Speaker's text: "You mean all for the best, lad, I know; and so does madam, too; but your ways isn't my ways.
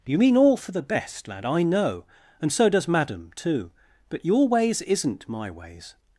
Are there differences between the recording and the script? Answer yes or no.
no